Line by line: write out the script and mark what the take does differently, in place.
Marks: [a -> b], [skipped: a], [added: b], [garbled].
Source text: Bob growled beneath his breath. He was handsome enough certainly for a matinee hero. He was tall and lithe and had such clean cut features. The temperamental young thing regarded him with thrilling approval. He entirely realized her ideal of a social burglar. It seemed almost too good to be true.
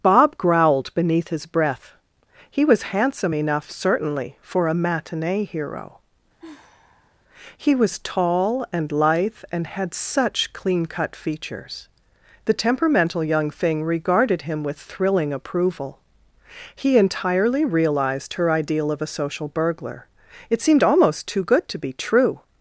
Bob growled beneath his breath. He was handsome enough certainly for a matinee hero. He was tall and lithe and had such clean cut features. The temperamental young thing regarded him with thrilling approval. He entirely realized her ideal of a social burglar. It seemed almost too good to be true.